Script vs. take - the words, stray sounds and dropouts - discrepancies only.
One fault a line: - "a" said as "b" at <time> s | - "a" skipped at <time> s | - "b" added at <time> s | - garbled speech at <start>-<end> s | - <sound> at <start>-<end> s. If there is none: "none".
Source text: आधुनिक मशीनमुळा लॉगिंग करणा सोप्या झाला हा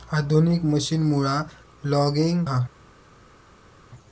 - "करणा सोप्या झाला" skipped at 2.4 s